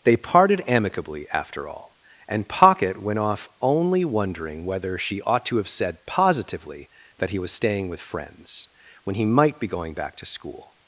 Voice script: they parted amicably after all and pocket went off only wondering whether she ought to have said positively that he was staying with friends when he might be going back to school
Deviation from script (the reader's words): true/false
false